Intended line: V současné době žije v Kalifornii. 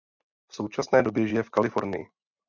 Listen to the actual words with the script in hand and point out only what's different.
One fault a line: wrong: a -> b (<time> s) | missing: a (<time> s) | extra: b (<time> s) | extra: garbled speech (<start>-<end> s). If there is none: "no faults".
no faults